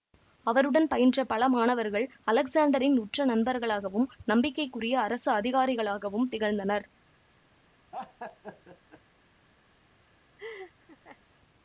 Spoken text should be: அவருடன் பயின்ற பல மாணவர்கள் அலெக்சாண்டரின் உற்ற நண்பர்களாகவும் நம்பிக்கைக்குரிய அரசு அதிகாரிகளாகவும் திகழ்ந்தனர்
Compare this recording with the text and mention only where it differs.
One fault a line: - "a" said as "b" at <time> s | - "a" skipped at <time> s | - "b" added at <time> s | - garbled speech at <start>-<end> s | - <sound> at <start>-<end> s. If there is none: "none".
- laugh at 7.9-9.0 s
- laugh at 10.4-11.2 s